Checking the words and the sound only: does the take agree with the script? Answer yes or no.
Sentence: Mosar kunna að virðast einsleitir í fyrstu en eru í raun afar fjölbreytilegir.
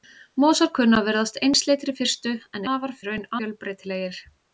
no